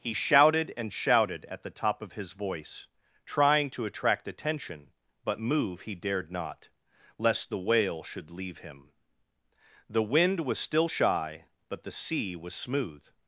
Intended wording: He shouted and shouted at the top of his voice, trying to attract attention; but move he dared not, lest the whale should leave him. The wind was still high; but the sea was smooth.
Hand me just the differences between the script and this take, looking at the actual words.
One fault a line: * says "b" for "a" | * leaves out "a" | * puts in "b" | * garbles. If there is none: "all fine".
* says "shy" for "high"